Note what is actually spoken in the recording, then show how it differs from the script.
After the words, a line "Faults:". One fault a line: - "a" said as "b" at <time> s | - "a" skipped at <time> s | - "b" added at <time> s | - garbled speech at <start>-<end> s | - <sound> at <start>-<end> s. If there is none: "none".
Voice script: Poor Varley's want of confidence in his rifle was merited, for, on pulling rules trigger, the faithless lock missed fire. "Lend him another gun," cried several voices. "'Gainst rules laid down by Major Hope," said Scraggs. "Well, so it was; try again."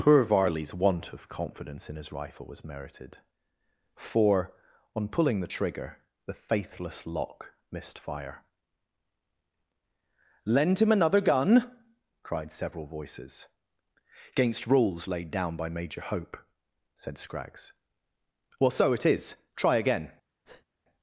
Poor Varley's want of confidence in his rifle was merited, for, on pulling the trigger, the faithless lock missed fire. "Lend him another gun," cried several voices. "'Gainst rules laid down by Major Hope," said Scraggs. "Well, so it is; try again."
Faults:
- "rules" said as "the" at 5.4 s
- "was" said as "is" at 19.0 s
- breath at 20.4-20.7 s